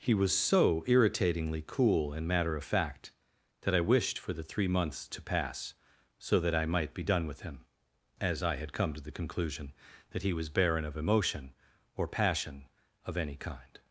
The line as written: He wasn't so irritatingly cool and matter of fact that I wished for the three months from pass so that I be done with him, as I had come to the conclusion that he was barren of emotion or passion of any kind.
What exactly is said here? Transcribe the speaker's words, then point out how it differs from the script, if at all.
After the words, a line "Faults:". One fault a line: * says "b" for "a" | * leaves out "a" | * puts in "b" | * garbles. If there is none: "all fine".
He was so irritatingly cool and matter of fact that I wished for the three months to pass so that I might be done with him, as I had come to the conclusion that he was barren of emotion or passion of any kind.
Faults:
* says "was" for "wasn't"
* says "to" for "from"
* puts in "might"